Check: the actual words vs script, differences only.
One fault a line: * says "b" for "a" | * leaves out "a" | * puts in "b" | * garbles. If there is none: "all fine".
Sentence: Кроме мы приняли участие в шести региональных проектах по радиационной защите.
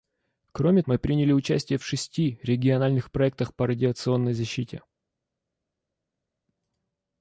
all fine